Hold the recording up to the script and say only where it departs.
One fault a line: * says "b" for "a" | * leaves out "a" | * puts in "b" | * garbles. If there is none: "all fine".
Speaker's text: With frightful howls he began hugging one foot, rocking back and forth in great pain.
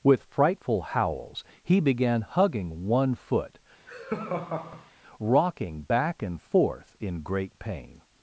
all fine